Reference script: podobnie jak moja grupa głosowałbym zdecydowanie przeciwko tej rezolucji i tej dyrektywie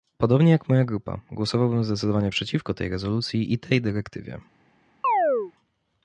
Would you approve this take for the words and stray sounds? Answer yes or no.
no